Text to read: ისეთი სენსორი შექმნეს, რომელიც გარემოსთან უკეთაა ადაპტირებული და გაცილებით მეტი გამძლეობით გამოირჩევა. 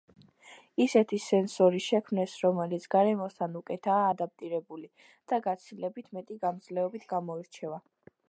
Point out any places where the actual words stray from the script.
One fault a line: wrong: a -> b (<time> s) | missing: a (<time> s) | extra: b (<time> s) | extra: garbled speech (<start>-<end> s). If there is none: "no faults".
no faults